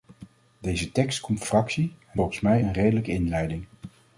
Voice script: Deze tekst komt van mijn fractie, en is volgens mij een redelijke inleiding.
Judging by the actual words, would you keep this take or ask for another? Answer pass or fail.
fail